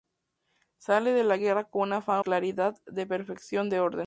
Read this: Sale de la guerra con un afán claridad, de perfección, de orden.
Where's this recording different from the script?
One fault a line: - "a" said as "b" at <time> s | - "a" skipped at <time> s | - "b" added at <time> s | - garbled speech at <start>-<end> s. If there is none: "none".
none